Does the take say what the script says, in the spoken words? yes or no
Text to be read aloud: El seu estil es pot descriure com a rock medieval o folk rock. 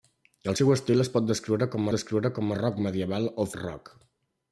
no